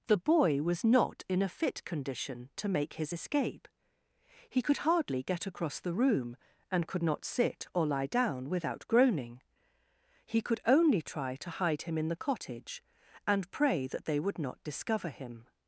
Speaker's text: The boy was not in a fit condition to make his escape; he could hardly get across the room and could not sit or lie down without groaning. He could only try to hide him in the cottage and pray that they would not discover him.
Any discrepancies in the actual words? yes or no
no